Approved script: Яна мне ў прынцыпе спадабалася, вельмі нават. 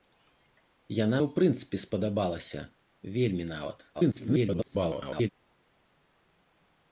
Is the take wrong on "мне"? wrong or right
wrong